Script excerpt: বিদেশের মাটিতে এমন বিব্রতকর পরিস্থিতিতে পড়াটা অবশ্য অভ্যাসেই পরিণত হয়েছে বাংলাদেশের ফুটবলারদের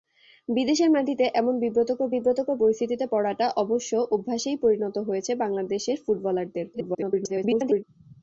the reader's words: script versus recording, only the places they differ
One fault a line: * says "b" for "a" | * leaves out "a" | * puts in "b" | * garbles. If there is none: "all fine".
* puts in "বিব্রতকর"
* garbles